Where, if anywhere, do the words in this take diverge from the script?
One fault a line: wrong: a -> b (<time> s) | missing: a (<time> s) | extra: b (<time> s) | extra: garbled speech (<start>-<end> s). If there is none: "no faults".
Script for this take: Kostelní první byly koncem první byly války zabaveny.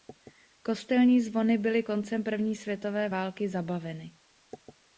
wrong: první -> zvony (1.2 s)
wrong: byly -> světové (2.6 s)